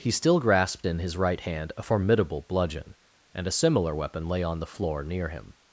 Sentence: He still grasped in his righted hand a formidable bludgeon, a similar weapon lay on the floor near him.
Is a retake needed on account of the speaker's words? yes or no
yes